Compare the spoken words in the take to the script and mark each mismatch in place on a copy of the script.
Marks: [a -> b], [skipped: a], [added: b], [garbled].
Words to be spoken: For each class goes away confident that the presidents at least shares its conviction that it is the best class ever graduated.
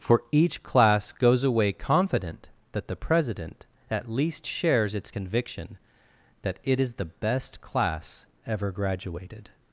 For each class goes away confident that the [presidents -> president] at least shares its conviction that it is the best class ever graduated.